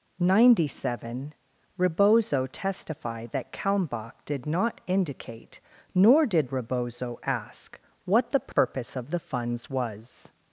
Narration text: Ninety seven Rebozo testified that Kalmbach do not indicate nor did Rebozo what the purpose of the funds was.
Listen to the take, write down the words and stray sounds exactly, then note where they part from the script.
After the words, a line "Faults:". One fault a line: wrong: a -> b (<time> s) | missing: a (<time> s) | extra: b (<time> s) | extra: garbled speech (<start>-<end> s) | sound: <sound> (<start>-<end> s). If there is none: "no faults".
Ninety seven Rebozo testified that Kalmbach did not indicate nor did Rebozo ask what the purpose of the funds was.
Faults:
wrong: do -> did (4.2 s)
extra: ask (7.3 s)
sound: dropout (8.5-8.6 s)